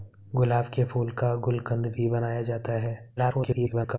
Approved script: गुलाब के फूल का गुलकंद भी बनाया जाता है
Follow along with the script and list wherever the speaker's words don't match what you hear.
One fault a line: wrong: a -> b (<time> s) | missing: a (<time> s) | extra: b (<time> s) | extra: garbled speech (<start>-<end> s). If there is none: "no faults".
extra: garbled speech (3.2-4.0 s)